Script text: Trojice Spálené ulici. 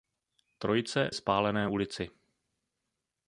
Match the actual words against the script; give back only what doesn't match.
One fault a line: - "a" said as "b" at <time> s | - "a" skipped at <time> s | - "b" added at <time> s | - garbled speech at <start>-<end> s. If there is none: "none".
none